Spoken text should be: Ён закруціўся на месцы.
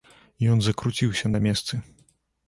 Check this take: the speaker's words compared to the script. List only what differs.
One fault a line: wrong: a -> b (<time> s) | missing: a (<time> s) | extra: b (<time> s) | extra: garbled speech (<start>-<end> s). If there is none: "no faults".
no faults